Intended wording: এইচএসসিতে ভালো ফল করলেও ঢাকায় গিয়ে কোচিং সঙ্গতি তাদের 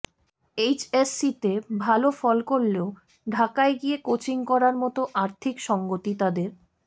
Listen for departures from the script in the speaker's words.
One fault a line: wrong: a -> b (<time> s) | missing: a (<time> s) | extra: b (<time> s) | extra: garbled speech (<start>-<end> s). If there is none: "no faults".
extra: করার মতো আর্থিক (4.5 s)